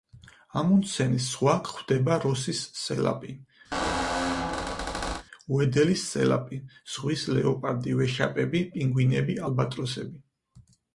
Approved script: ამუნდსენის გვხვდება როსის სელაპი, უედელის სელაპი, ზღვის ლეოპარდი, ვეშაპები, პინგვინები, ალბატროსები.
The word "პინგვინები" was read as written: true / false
true